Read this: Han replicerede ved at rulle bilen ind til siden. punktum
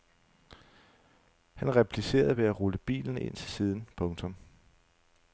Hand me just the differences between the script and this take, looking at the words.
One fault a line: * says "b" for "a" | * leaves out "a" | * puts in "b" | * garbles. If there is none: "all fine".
all fine